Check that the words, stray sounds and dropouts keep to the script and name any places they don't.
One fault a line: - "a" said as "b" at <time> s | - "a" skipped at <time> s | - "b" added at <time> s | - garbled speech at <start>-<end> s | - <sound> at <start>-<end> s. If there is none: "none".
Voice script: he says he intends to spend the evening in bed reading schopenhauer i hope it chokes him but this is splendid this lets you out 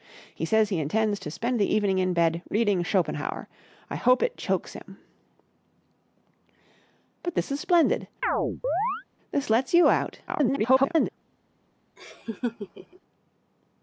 - chirp at 8.2-9.0 s
- garbled speech at 10.3-11.1 s
- laugh at 12.0-13.0 s